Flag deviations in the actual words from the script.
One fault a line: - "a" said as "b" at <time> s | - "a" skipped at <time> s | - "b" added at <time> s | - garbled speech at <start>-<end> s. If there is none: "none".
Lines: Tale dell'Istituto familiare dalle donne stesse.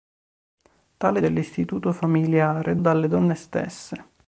none